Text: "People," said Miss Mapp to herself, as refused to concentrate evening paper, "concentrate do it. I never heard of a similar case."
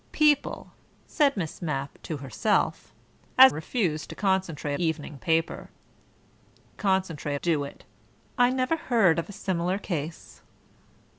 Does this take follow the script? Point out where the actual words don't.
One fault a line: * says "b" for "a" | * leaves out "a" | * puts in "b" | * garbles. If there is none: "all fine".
all fine